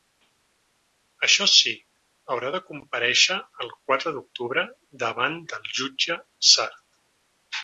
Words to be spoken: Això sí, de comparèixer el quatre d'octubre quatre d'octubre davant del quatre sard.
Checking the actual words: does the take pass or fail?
fail